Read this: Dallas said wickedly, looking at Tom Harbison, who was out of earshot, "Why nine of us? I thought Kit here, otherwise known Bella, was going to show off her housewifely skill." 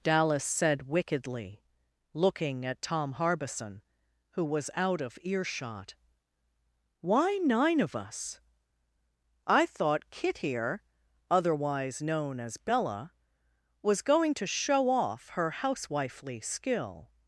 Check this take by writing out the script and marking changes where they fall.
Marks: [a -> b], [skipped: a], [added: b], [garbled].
Dallas said wickedly, looking at Tom Harbison, who was out of earshot, "Why nine of us? I thought Kit here, otherwise known [added: as] Bella, was going to show off her housewifely skill."